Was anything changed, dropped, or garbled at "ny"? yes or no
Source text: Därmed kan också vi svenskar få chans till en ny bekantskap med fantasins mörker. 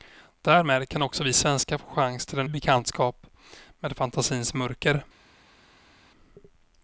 yes